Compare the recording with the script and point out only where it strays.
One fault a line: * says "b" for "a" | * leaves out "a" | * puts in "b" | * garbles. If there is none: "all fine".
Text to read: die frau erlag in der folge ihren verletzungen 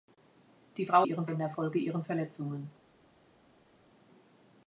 * says "ihren" for "erlag"